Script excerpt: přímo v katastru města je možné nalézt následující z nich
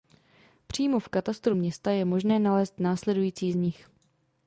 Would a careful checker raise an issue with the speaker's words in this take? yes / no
no